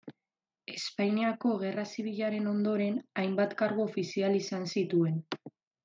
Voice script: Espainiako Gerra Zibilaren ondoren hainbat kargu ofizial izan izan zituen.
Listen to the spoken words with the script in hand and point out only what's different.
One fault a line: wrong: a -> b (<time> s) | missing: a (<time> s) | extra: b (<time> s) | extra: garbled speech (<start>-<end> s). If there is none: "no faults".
missing: izan (4.7 s)